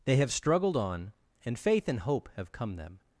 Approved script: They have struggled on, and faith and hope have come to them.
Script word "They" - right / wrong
right